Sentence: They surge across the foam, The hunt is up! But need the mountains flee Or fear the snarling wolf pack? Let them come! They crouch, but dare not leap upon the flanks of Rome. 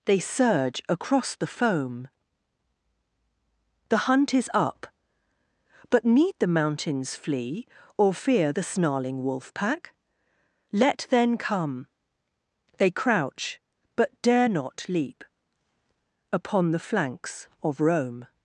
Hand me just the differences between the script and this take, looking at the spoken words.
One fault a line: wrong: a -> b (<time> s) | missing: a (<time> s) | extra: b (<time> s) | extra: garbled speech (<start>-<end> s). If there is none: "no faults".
wrong: them -> then (11.1 s)